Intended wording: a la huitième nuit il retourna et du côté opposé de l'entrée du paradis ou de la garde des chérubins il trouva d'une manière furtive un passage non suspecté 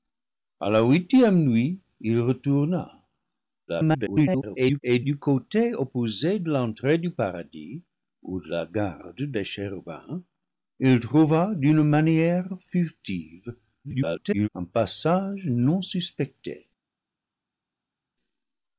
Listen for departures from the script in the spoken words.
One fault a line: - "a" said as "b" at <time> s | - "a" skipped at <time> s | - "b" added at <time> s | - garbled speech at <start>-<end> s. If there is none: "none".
- garbled speech at 3.7-4.8 s
- garbled speech at 13.8-14.5 s